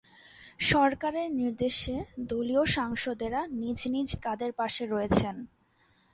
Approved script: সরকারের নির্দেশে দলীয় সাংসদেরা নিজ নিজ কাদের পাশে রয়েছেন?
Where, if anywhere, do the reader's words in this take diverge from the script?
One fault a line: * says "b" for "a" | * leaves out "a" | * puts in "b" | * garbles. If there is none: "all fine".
all fine